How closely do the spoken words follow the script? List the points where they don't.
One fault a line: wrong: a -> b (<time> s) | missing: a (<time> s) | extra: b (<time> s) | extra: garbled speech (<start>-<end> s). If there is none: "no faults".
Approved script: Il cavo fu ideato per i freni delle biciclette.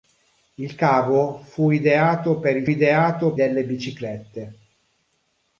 wrong: freni -> ideato (2.6 s)